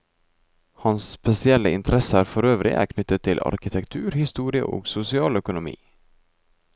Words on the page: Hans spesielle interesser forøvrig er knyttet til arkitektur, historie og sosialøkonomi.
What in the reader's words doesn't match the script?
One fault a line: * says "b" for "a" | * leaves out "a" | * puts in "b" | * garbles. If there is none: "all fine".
all fine